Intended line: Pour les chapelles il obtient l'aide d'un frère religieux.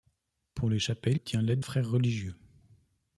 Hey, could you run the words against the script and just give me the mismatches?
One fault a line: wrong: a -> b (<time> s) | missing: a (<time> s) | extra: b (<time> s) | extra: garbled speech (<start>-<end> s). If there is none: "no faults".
missing: il (1.2 s)
missing: d'un (1.6 s)